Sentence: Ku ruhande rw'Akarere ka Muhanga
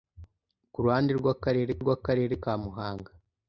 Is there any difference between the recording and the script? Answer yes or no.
yes